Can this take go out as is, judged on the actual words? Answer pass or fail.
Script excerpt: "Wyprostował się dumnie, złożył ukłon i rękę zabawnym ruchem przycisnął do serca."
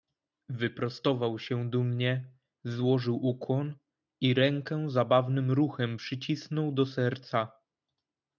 pass